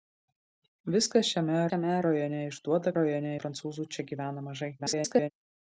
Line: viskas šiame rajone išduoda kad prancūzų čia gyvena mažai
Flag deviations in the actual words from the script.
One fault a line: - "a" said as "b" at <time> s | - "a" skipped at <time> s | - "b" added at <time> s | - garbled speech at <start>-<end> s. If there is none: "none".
- "šiame" added at 1.7 s
- "kad" said as "rajone" at 3.0 s
- garbled speech at 4.8-5.3 s